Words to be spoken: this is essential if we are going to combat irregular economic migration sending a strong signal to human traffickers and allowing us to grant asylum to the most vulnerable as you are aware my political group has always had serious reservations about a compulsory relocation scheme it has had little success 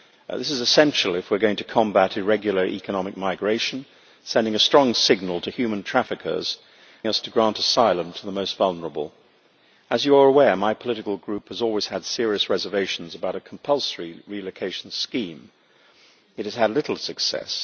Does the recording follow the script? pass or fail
fail